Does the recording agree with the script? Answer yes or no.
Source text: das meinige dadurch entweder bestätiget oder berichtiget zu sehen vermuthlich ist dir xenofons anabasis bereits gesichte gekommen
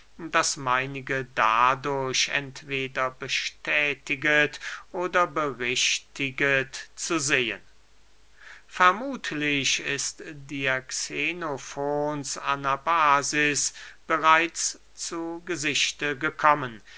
no